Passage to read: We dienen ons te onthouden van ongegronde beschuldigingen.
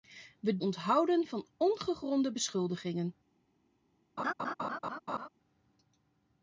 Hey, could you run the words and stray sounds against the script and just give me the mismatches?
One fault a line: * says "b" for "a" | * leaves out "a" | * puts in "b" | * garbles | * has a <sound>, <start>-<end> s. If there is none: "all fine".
* leaves out "dienen ons te"
* has a laugh, 4.2-5.3 s